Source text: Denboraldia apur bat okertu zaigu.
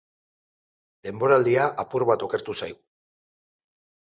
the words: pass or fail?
pass